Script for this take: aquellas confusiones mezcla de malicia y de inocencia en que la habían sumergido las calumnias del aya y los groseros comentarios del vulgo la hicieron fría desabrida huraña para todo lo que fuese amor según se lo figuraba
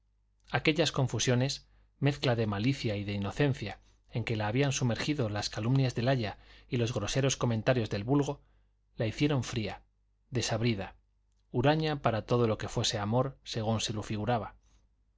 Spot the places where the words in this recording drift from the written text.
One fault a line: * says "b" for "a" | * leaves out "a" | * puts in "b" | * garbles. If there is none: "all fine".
all fine